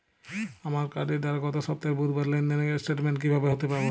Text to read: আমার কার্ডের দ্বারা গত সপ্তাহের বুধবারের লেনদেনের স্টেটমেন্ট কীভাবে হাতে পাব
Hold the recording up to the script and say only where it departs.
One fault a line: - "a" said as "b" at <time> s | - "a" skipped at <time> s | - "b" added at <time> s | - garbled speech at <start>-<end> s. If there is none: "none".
none